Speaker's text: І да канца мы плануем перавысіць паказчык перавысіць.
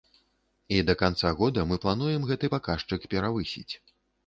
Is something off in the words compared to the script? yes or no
yes